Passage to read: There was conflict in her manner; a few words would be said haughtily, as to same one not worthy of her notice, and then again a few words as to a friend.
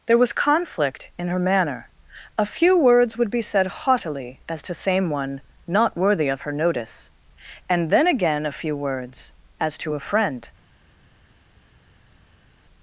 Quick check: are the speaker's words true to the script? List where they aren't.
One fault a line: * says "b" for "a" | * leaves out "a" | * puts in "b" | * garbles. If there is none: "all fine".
all fine